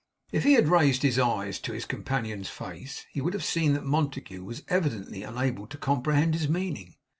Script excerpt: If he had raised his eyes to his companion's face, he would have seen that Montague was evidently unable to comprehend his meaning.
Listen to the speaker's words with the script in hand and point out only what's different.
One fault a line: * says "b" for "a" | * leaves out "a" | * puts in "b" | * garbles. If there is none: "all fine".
all fine